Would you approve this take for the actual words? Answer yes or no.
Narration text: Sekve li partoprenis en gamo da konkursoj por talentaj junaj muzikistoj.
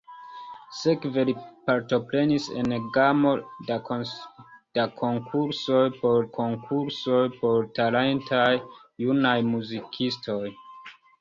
no